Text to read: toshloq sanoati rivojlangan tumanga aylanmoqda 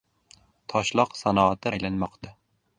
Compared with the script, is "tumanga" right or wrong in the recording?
wrong